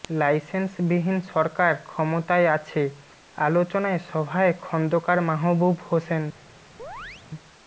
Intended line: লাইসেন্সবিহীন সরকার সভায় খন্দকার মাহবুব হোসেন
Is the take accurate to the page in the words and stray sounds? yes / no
no